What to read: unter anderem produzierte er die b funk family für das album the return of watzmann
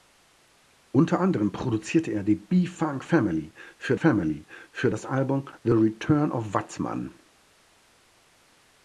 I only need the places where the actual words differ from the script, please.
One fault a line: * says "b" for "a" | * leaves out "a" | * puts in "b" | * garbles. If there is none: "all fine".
* puts in "family für"